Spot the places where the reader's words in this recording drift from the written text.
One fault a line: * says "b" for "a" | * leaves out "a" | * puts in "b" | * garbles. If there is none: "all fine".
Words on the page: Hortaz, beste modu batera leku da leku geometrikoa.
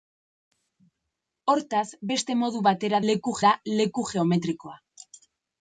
all fine